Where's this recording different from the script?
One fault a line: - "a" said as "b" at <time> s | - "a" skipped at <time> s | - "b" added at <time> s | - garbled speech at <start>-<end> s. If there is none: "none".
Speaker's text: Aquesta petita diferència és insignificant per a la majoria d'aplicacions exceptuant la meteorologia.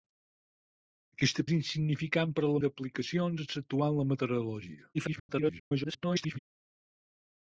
- "petita diferència" skipped at 1.4 s
- "majoria" skipped at 2.6 s
- garbled speech at 4.9-6.4 s